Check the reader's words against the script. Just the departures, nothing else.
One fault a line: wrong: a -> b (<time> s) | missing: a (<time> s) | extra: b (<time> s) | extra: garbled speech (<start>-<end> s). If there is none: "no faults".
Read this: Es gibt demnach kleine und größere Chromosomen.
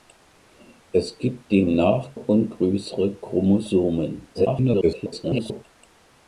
missing: kleine (2.2 s)
extra: garbled speech (4.3-5.6 s)